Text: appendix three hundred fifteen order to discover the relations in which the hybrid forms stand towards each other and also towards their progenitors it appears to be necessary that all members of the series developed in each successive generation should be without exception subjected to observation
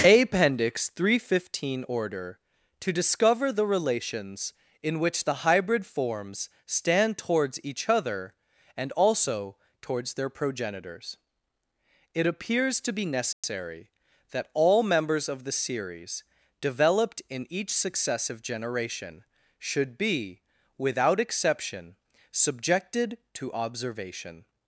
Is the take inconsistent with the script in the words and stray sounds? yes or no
yes